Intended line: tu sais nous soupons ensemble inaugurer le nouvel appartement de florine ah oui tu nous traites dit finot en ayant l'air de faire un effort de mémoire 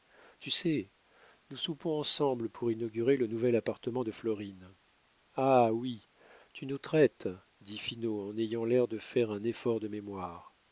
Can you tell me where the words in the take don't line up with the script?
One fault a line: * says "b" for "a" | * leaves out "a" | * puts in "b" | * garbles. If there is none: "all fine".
* puts in "pour"